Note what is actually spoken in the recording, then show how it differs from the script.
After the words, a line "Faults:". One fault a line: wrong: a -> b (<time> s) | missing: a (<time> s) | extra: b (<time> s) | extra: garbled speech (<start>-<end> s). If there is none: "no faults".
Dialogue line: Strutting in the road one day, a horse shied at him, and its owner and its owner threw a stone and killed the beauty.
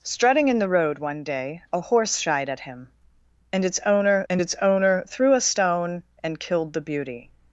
Strutting in the road one day, a horse shied at him, and its owner and its owner threw a stone and killed the beauty.
Faults:
no faults